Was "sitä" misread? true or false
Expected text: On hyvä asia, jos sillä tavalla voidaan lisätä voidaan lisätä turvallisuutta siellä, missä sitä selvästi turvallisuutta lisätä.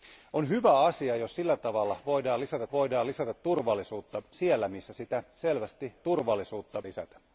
false